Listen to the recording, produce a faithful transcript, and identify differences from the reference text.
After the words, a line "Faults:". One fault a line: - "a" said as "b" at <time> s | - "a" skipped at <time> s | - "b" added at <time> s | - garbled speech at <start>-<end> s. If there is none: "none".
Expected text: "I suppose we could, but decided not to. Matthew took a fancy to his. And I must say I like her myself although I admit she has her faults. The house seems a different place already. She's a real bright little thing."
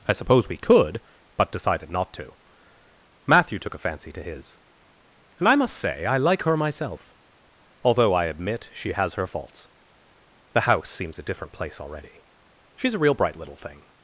"I suppose we could, but decided not to. Matthew took a fancy to his. And I must say I like her myself although I admit she has her faults. The house seems a different place already. She's a real bright little thing."
Faults:
none